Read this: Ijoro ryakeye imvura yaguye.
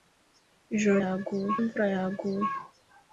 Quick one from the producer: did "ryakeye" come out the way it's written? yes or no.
no